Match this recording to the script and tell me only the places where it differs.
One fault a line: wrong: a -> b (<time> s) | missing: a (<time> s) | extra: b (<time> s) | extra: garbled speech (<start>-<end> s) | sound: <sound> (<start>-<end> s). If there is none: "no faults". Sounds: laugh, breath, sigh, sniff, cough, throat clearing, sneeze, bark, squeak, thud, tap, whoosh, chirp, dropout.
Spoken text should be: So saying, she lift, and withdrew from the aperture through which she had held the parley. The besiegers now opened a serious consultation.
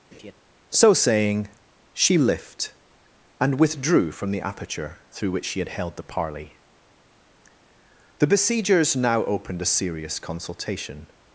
sound: laugh (0.1-0.3 s)